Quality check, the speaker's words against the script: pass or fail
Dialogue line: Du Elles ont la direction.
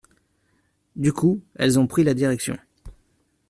fail